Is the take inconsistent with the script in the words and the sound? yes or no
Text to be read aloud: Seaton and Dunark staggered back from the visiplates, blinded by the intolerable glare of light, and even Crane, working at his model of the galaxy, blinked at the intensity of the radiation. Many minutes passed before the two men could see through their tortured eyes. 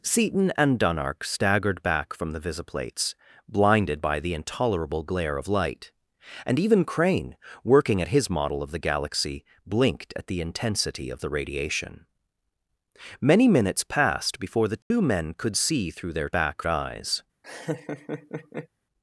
yes